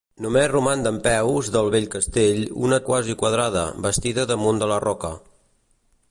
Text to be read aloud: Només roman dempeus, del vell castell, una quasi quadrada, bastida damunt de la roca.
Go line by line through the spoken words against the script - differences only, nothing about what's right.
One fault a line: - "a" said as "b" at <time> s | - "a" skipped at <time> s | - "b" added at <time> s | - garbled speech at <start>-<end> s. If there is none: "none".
none